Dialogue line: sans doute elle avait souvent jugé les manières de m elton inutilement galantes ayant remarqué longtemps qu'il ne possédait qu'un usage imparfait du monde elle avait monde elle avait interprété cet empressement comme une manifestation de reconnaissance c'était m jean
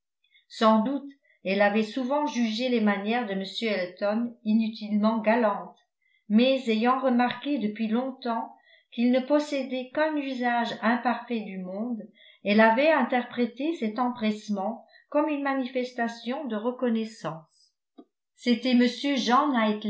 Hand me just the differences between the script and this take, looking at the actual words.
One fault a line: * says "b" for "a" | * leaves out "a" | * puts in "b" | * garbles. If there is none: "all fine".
* puts in "mais"
* puts in "depuis"
* leaves out "monde elle avait"